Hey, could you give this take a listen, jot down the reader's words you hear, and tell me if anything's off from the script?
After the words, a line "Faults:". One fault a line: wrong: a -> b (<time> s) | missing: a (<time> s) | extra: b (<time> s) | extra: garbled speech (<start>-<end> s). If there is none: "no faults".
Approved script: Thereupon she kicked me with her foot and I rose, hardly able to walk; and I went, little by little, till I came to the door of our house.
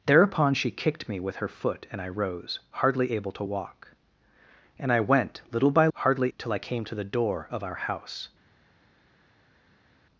Thereupon she kicked me with her foot and I rose, hardly able to walk; and I went, little by hardly, till I came to the door of our house.
Faults:
wrong: little -> hardly (5.9 s)